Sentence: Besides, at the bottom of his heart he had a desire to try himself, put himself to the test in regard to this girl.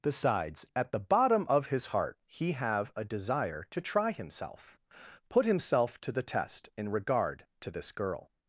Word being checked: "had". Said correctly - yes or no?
no